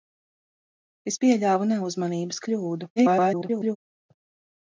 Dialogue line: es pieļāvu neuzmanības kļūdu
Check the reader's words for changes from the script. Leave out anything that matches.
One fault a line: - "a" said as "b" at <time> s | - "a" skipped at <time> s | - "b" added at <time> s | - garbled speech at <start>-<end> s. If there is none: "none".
- garbled speech at 3.0-3.8 s